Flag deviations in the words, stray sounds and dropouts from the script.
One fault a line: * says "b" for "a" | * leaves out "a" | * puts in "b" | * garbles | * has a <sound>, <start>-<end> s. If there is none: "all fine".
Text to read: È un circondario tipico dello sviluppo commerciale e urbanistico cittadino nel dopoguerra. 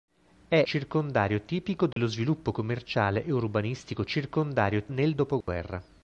* leaves out "un"
* has a dropout, 1.9-2.0 s
* says "circondario" for "cittadino"
* has a dropout, 5.4-5.5 s